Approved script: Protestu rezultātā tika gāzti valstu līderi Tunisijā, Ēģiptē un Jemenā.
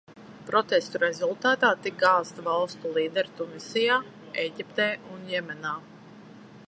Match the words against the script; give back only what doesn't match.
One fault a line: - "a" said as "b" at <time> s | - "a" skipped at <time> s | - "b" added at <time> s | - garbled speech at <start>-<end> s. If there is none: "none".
none